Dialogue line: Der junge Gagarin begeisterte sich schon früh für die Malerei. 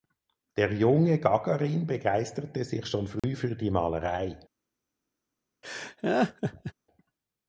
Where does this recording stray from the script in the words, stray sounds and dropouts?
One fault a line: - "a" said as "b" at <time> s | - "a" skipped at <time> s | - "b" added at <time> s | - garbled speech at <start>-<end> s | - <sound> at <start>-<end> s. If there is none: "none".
- dropout at 3.2-3.2 s
- laugh at 5.6-6.7 s